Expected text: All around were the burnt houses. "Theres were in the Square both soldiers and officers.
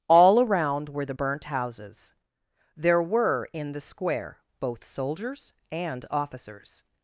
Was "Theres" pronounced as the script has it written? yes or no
no